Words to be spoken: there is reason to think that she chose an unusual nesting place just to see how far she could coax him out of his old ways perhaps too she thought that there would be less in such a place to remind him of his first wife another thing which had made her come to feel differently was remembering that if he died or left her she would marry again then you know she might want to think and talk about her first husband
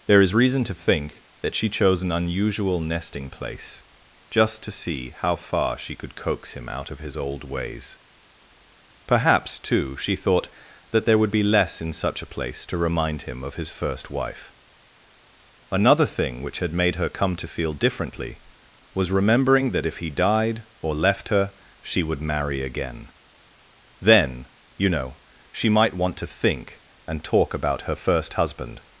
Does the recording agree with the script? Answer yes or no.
yes